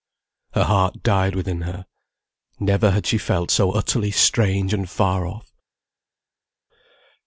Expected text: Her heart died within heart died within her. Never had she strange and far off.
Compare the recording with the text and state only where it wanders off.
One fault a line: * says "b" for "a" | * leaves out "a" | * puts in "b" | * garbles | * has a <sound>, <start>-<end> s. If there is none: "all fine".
* leaves out "heart died within"
* puts in "felt so utterly"